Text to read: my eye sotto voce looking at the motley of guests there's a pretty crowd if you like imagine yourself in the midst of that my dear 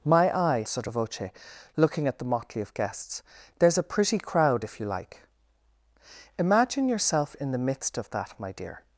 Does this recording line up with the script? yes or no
yes